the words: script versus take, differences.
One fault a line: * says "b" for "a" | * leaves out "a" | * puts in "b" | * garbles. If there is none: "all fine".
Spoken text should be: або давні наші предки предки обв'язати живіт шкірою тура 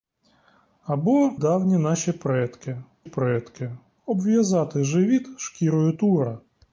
all fine